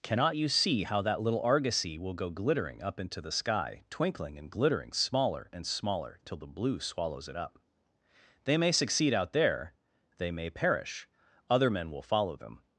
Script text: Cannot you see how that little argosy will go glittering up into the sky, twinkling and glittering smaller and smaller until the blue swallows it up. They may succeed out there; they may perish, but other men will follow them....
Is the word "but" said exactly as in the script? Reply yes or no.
no